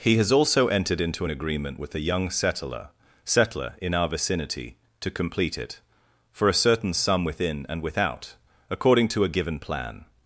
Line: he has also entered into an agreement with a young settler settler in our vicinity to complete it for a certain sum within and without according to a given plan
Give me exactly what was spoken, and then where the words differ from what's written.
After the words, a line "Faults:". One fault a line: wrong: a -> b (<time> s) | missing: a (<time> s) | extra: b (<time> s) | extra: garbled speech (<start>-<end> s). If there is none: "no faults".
he has also entered into an agreement with a young settler settler in our vicinity to complete it for a certain sum within and without according to a given plan
Faults:
no faults